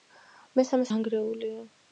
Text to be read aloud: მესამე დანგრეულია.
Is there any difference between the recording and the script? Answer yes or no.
no